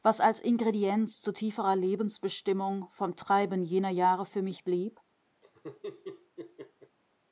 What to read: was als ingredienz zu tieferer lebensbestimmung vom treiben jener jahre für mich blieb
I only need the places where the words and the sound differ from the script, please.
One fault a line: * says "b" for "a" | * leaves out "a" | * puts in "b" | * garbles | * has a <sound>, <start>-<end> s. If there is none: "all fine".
* has a laugh, 5.4-7.0 s